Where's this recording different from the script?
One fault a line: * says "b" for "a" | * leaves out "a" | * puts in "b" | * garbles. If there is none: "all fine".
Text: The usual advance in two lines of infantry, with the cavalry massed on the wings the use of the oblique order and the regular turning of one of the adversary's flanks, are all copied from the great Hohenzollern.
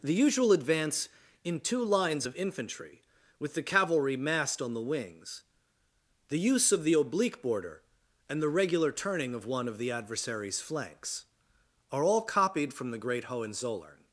* says "border" for "order"